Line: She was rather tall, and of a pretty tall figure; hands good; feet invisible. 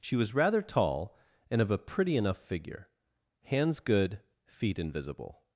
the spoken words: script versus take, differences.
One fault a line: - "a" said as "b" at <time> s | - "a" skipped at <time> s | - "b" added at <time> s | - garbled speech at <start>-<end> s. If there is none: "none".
- "tall" said as "enough" at 2.2 s